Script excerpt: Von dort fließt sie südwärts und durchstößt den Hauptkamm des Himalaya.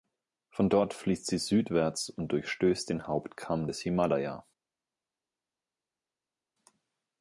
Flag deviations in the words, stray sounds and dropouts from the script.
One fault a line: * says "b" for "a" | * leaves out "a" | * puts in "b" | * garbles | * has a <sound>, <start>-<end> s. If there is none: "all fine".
all fine